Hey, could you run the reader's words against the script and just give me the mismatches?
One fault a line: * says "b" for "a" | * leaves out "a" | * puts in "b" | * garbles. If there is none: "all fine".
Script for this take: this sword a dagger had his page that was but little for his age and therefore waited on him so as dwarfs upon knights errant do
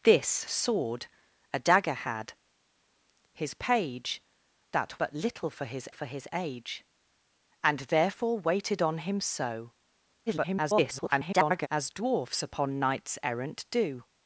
* leaves out "was"
* puts in "for his"
* garbles